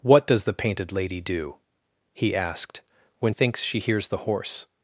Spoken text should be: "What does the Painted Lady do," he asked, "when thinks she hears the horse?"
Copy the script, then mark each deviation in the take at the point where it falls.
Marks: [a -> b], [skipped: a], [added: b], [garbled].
"What does the Painted Lady do," he asked, "when thinks she hears the horse?"